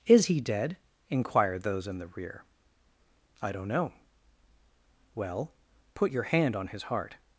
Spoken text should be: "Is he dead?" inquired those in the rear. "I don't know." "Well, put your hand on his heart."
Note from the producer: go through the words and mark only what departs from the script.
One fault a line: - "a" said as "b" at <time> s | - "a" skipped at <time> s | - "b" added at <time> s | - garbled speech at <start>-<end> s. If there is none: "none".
none